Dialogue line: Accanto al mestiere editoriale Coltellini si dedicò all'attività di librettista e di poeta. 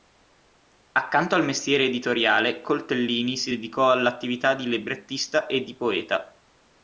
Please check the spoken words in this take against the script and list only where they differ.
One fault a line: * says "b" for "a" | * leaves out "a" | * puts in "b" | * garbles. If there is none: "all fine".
all fine